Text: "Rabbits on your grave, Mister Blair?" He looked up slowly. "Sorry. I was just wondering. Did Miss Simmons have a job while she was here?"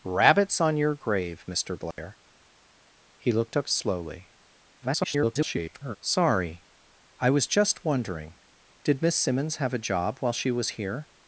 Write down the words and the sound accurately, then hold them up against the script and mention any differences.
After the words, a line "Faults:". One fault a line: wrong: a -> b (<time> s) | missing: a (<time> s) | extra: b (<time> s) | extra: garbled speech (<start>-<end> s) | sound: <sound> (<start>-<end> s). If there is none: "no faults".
"Rabbits on your grave, Mister Blair?" He looked up slowly. [garbled] "Sorry. I was just wondering. Did Miss Simmons have a job while she was here?"
Faults:
sound: dropout (1.9-2.0 s)
extra: garbled speech (4.8-6.0 s)